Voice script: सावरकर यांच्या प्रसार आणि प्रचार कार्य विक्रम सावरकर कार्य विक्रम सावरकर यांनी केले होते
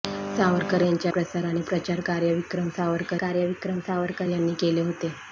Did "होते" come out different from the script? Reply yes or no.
no